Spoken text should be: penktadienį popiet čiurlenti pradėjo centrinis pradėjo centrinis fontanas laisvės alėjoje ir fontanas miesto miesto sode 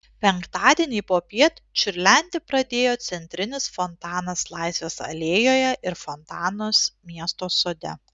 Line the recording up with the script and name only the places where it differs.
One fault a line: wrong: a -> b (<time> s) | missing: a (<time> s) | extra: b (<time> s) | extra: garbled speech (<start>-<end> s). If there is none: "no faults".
missing: pradėjo centrinis (3.7 s)
missing: miesto (7.5 s)